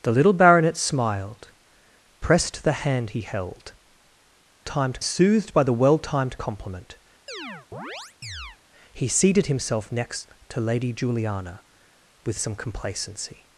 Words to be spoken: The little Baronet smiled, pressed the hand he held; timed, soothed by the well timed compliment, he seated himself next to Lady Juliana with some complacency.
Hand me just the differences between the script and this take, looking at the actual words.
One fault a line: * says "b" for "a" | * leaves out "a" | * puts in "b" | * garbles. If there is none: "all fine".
all fine